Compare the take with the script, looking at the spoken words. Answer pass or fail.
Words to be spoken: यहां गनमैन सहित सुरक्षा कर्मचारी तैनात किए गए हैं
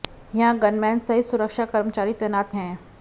fail